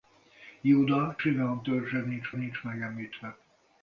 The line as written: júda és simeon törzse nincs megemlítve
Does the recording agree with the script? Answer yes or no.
no